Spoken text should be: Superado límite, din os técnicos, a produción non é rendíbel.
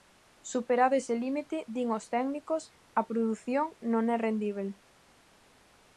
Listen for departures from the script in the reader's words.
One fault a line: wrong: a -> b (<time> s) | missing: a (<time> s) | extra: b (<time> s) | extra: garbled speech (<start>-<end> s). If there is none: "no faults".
extra: ese (1.0 s)